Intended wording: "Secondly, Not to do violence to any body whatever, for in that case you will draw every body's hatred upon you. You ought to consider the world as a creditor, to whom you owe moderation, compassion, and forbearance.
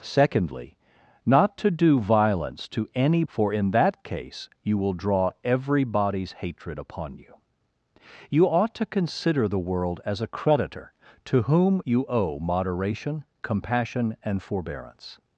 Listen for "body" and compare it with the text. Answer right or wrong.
wrong